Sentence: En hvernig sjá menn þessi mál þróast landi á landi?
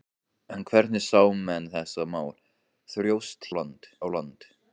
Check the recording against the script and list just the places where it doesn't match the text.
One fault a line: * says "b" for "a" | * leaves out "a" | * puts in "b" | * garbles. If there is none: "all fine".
all fine